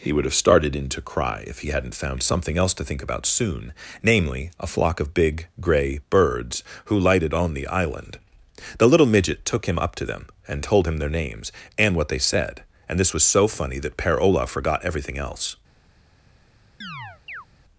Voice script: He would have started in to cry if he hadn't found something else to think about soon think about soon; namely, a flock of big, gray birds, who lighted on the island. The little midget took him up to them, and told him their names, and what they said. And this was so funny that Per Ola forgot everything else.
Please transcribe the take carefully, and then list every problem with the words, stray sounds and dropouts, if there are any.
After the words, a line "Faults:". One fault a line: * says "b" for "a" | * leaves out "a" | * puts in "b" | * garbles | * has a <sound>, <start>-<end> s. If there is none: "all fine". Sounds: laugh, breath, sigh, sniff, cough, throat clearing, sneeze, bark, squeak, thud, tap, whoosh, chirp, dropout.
He would have started in to cry if he hadn't found something else to think about soon; namely, a flock of big, gray birds, who lighted on the island. The little midget took him up to them, and told him their names, and what they said. And this was so funny that Per Ola forgot everything else.
Faults:
* leaves out "think about soon"
* has a chirp, 16.8-17.5 s